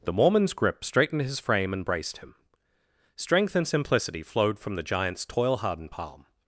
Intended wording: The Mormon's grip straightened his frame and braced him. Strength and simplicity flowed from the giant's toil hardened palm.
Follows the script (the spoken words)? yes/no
yes